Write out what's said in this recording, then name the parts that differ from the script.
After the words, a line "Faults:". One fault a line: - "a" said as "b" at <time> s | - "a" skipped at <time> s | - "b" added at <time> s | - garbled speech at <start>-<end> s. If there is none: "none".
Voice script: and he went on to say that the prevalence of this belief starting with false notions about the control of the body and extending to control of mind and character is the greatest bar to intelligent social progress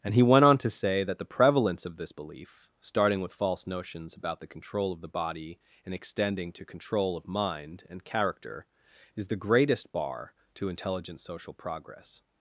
and he went on to say that the prevalence of this belief starting with false notions about the control of the body and extending to control of mind and character is the greatest bar to intelligent social progress
Faults:
none